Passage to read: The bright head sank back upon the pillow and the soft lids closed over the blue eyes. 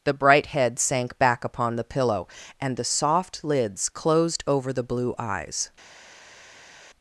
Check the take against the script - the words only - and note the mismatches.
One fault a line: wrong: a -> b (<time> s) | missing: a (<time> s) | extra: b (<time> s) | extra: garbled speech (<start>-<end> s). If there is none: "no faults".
no faults